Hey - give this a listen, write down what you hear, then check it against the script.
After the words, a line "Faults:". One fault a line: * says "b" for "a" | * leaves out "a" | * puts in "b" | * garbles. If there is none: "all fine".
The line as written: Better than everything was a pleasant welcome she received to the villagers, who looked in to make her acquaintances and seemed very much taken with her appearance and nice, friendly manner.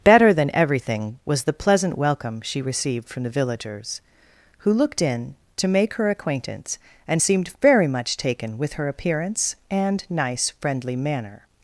Better than everything was the pleasant welcome she received from the villagers, who looked in to make her acquaintance and seemed very much taken with her appearance and nice, friendly manner.
Faults:
* says "the" for "a"
* says "from" for "to"
* says "acquaintance" for "acquaintances"